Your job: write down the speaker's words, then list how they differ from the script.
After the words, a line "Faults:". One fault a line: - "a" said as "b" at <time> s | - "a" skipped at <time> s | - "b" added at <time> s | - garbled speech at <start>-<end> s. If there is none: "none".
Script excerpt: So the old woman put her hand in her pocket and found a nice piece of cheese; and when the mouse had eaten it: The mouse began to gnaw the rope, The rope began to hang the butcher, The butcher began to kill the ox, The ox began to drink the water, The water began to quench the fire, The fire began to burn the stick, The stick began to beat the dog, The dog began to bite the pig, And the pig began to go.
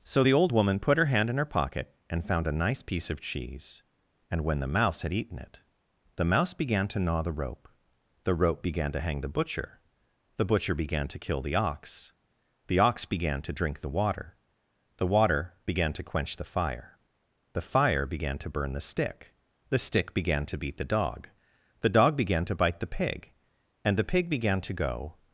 So the old woman put her hand in her pocket and found a nice piece of cheese; and when the mouse had eaten it: The mouse began to gnaw the rope, The rope began to hang the butcher, The butcher began to kill the ox, The ox began to drink the water, The water began to quench the fire, The fire began to burn the stick, The stick began to beat the dog, The dog began to bite the pig, And the pig began to go.
Faults:
none